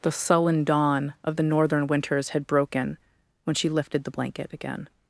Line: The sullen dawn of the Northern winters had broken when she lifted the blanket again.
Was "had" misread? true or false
false